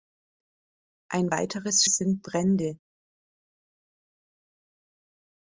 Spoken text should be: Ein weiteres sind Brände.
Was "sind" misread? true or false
false